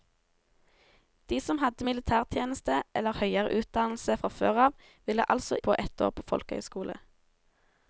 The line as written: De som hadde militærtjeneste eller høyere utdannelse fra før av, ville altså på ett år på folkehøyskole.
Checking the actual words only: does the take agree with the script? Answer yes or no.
yes